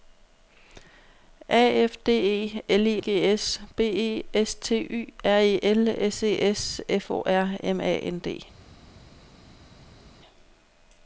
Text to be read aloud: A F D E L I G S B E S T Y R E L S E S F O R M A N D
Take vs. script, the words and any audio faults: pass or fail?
pass